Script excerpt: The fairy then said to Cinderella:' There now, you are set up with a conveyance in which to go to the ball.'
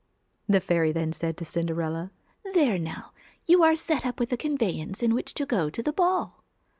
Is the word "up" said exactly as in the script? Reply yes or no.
yes